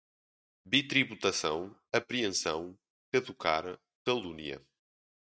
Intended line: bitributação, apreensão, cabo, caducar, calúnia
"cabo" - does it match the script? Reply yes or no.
no